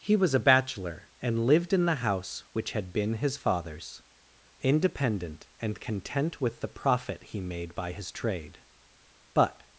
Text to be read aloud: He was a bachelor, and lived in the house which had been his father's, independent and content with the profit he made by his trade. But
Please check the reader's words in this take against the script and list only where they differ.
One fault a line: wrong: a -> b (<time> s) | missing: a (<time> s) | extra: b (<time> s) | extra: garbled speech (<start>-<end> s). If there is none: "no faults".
no faults